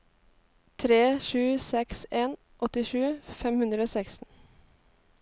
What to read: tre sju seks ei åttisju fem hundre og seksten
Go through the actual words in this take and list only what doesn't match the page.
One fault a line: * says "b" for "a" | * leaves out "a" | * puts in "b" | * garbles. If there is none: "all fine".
* says "en" for "ei"